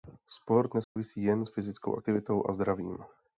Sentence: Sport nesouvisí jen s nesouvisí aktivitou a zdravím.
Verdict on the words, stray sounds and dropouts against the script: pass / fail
fail